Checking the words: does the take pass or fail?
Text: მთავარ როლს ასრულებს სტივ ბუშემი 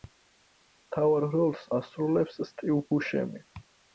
pass